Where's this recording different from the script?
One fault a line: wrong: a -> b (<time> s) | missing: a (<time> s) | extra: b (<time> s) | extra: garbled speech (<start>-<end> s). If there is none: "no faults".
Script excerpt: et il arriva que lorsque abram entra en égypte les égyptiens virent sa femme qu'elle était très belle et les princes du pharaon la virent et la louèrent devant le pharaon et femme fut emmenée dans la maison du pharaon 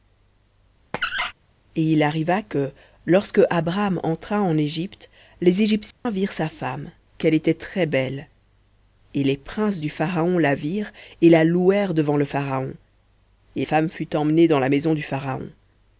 no faults